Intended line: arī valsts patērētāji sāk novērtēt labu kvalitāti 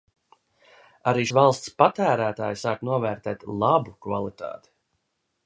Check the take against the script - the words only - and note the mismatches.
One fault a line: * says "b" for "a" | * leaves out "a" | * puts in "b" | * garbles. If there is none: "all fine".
all fine